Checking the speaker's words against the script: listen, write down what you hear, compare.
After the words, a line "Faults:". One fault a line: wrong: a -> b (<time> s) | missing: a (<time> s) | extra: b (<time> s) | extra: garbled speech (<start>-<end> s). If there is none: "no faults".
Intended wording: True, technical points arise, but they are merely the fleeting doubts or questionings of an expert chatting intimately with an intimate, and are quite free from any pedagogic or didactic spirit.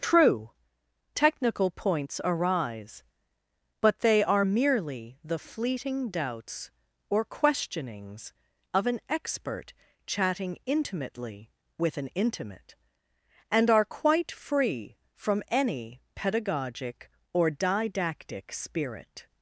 True, technical points arise, but they are merely the fleeting doubts or questionings of an expert chatting intimately with an intimate, and are quite free from any pedagogic or didactic spirit.
Faults:
no faults